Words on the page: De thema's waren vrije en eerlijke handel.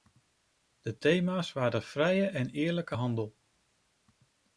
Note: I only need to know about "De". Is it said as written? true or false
true